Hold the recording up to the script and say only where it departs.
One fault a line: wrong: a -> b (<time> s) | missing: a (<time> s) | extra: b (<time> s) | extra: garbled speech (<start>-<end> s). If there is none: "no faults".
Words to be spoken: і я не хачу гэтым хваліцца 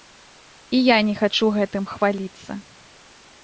no faults